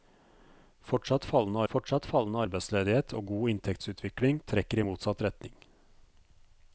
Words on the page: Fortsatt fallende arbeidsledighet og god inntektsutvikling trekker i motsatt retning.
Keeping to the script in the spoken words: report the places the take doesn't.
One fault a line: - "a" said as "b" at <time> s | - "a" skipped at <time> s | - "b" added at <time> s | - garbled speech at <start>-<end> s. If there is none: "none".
- "fortsatt fallende" added at 1.7 s